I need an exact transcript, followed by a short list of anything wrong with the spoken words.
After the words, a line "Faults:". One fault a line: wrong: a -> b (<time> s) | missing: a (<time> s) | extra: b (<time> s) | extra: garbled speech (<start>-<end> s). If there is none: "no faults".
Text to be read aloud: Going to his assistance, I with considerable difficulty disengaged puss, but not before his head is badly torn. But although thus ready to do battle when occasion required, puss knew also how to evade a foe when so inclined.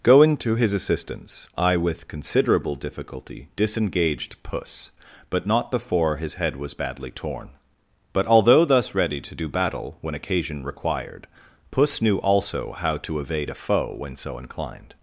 Going to his assistance, I with considerable difficulty disengaged puss, but not before his head was badly torn. But although thus ready to do battle when occasion required, puss knew also how to evade a foe when so inclined.
Faults:
wrong: is -> was (6.5 s)